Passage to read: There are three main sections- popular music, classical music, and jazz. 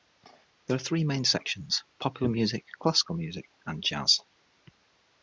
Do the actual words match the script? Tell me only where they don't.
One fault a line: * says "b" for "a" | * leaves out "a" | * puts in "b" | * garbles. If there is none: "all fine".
all fine